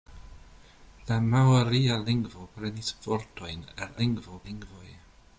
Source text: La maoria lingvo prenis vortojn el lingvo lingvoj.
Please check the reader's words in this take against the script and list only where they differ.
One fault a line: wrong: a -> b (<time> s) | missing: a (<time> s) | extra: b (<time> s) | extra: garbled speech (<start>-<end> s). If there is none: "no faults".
no faults